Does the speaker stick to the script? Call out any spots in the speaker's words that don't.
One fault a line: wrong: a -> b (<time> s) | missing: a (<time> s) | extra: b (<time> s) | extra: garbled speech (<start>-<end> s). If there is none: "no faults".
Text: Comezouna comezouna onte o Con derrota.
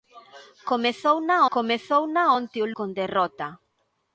no faults